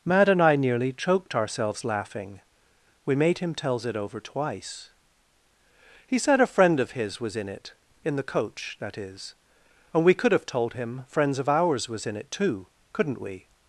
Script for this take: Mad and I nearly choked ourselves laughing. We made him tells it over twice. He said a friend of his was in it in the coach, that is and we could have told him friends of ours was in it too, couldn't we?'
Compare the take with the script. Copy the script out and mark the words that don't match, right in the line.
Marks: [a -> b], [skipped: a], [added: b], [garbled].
Mad and I nearly choked ourselves laughing. We made him tells it over twice. He said a friend of his was in it in the coach, that is and we could have told him friends of ours was in it too, couldn't we?'